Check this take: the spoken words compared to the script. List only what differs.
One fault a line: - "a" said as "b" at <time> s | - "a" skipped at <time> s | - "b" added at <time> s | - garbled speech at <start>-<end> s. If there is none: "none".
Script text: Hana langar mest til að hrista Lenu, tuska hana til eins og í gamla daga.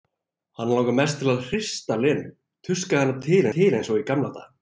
- "til" added at 3.6 s